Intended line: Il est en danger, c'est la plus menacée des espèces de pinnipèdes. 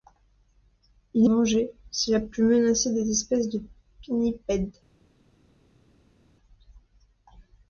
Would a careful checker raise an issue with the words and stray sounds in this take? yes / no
yes